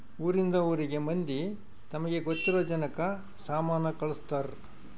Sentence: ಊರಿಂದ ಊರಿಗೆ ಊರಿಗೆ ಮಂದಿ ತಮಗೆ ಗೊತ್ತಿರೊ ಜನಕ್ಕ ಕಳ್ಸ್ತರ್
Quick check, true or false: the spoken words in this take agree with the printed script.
false